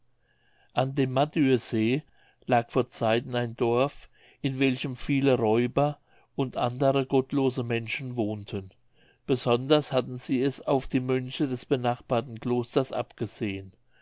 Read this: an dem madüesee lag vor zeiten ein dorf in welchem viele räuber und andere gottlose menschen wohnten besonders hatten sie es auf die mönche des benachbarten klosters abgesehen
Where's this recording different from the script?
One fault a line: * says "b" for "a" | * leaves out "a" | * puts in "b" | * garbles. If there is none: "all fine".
all fine